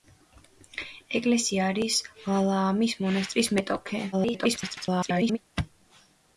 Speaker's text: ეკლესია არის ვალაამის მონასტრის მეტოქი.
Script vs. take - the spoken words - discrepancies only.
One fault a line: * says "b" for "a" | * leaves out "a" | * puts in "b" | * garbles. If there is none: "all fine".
* garbles